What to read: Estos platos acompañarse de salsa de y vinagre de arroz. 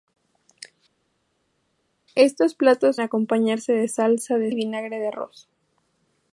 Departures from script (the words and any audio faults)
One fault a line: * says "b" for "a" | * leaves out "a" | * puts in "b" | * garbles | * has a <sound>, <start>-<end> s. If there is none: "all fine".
all fine